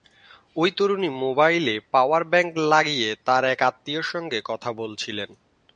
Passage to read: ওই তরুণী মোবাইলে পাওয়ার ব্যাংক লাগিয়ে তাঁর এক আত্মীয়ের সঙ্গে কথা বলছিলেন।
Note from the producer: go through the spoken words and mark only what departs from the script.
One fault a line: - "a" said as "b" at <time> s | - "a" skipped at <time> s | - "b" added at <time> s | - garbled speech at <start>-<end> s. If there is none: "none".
none